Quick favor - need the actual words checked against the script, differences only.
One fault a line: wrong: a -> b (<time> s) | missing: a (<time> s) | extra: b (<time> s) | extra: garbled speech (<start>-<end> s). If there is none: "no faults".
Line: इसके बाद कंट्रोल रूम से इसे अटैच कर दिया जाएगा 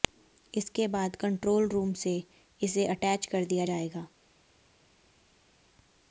no faults